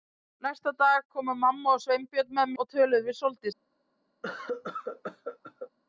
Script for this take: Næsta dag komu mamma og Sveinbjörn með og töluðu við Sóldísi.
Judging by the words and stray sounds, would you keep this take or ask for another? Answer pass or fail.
fail